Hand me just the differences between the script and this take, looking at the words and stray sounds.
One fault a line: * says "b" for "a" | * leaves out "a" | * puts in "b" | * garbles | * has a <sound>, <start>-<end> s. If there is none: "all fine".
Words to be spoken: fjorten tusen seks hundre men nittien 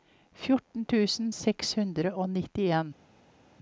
* says "og" for "men"